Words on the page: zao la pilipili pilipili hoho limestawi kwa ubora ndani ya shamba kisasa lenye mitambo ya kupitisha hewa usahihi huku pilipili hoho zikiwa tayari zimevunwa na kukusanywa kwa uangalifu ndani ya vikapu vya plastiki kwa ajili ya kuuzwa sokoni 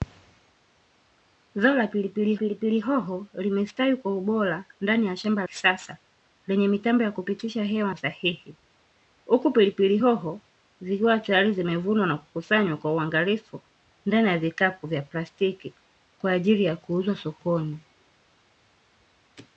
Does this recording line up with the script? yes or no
yes